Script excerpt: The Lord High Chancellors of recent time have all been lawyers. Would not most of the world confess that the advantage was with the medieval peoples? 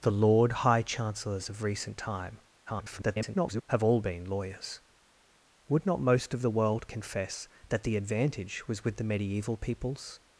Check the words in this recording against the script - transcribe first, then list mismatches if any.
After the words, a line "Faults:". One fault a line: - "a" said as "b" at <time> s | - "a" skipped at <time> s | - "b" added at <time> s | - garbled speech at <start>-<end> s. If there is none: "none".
The Lord High Chancellors of recent time [garbled] have all been lawyers. Would not most of the world confess that the advantage was with the medieval peoples?
Faults:
- garbled speech at 2.7-3.6 s